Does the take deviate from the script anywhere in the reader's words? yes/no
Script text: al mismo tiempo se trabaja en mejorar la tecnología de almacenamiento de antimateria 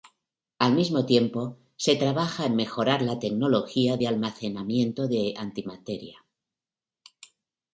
no